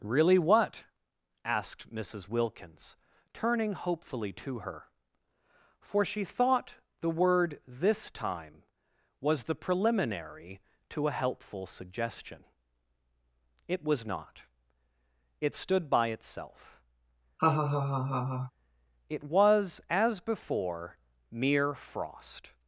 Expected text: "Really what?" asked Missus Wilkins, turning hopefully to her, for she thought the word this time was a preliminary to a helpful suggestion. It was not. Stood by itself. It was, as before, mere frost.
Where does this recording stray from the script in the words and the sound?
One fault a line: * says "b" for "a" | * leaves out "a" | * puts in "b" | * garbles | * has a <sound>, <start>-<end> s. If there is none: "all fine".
* says "the" for "a"
* puts in "It"
* has a laugh, 17.4-18.5 s